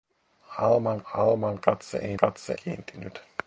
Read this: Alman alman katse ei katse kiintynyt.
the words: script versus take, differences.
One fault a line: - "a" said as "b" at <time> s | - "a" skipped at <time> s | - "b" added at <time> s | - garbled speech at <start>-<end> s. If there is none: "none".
none